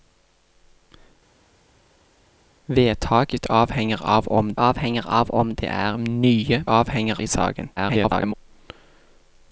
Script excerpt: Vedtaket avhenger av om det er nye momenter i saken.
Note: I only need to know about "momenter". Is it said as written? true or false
false